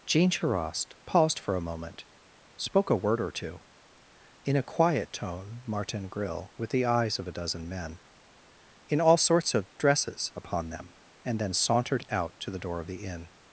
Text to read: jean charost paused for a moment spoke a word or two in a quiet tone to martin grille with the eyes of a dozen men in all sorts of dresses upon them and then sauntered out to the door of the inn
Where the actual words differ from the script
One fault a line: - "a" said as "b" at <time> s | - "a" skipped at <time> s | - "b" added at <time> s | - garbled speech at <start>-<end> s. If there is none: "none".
- "to" skipped at 5.6 s